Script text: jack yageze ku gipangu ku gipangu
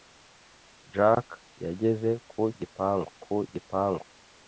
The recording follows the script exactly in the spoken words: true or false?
true